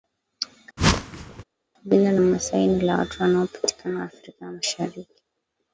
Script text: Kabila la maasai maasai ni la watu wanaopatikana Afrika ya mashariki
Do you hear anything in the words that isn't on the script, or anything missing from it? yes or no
yes